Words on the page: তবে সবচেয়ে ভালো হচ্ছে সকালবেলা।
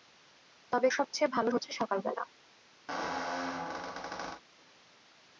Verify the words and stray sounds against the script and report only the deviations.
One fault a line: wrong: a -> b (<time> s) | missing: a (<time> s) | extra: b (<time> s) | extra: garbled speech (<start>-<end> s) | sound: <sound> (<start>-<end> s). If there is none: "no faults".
sound: squeak (2.9-4.4 s)